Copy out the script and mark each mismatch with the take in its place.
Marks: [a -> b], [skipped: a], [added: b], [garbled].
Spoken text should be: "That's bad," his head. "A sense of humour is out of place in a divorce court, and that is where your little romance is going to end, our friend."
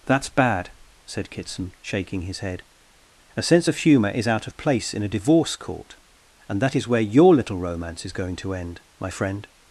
"That's bad," [added: said Kitson shaking] his head. "A sense of humour is out of place in a divorce court, and that is where your little romance is going to end, [our -> my] friend."